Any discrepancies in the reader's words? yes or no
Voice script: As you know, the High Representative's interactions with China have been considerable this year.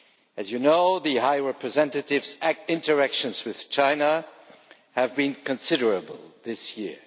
no